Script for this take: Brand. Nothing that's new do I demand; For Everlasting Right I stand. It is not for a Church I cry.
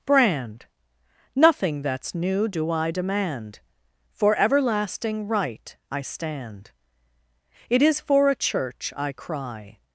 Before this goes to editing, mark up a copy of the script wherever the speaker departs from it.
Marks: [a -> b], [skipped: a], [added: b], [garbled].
Brand. Nothing that's new do I demand; For Everlasting Right I stand. It is [skipped: not] for a Church I cry.